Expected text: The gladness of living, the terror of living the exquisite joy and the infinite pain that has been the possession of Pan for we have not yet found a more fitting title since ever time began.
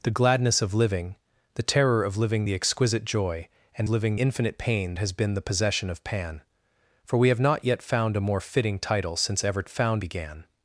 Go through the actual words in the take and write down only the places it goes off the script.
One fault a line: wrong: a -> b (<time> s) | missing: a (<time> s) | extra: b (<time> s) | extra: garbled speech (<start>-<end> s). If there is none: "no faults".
wrong: the -> living (3.9 s)
missing: that (4.9 s)
wrong: time -> found (9.7 s)